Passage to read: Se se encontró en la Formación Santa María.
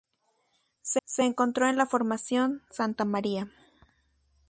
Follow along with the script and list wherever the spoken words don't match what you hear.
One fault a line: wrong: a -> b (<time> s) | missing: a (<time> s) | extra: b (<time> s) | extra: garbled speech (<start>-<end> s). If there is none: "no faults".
no faults